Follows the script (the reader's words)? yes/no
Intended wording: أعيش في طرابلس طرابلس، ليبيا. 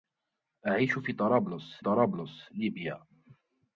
yes